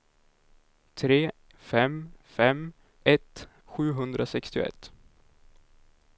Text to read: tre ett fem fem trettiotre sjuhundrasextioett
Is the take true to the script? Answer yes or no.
no